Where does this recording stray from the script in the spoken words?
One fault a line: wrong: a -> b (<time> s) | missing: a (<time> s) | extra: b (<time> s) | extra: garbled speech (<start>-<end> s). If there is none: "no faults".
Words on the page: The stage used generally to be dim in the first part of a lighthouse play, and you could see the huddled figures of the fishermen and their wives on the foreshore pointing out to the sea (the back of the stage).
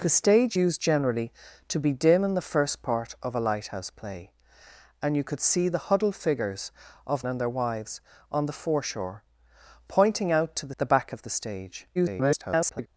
missing: the fishermen (7.2 s)
missing: sea (10.8 s)
extra: garbled speech (11.9-12.9 s)